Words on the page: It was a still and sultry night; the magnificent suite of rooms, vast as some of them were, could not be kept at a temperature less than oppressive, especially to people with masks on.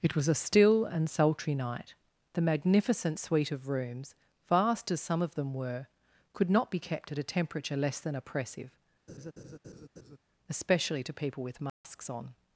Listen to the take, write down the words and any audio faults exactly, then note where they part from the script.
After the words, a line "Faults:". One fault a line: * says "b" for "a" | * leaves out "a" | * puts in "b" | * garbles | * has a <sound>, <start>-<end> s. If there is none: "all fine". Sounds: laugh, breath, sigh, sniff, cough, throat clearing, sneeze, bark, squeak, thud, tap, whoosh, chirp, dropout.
It was a still and sultry night; the magnificent suite of rooms, vast as some of them were, could not be kept at a temperature less than oppressive, especially to people with masks on.
Faults:
* has a laugh, 9.1-10.2 s
* has a dropout, 11.7-11.8 s